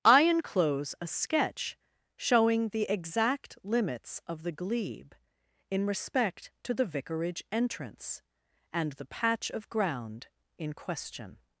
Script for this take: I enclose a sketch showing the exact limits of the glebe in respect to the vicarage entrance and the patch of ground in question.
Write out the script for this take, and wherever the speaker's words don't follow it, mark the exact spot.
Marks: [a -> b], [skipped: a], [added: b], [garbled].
I enclose a sketch showing the exact limits of the glebe in respect to the vicarage entrance and the patch of ground in question.